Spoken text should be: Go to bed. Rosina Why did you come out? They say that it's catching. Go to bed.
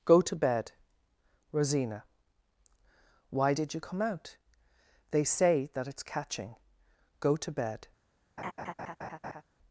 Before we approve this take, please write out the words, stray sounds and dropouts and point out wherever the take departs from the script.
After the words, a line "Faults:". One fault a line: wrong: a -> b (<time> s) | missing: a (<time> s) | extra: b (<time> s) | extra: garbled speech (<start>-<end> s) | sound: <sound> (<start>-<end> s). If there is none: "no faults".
Go to bed. Rosina Why did you come out? They say that it's catching. Go to bed.
Faults:
sound: laugh (8.4-9.4 s)